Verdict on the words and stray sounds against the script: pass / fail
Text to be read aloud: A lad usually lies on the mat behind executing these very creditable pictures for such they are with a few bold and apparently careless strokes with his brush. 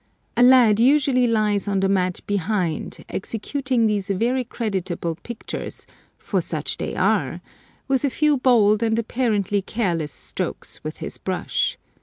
pass